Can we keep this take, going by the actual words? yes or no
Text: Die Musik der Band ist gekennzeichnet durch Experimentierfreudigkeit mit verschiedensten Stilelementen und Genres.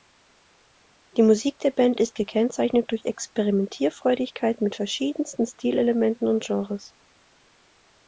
yes